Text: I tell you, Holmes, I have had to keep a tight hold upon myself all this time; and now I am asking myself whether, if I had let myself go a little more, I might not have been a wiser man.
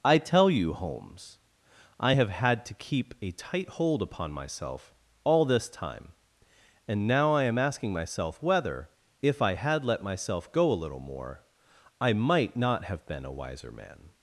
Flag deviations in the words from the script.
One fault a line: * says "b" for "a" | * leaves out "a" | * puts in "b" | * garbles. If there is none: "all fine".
all fine